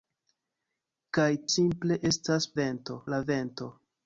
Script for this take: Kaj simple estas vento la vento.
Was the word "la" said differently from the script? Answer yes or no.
no